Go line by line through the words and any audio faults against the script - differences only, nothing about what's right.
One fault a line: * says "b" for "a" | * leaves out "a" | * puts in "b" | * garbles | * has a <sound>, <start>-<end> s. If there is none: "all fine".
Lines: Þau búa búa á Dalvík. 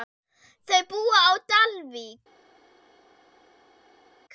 * leaves out "búa"